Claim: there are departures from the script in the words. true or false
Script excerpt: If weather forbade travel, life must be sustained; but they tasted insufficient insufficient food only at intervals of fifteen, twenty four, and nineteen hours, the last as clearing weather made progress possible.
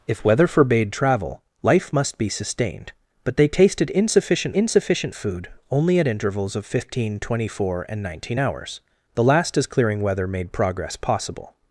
false